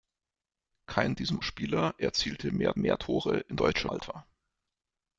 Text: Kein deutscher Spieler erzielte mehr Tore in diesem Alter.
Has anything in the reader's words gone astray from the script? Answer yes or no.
yes